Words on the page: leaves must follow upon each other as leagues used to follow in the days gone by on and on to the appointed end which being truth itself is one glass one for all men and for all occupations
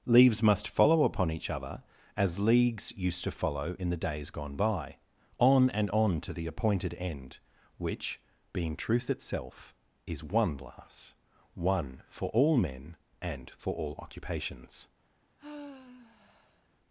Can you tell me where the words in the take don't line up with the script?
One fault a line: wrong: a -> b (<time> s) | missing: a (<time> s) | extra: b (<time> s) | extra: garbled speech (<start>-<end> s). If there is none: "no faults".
no faults